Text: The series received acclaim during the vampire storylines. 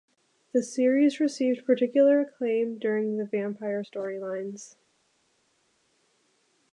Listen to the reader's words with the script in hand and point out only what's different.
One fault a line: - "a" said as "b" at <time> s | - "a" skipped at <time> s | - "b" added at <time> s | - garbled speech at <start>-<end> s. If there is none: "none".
- "particular" added at 1.6 s